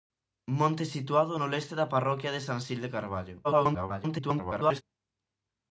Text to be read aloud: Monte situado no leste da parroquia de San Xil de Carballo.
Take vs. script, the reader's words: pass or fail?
fail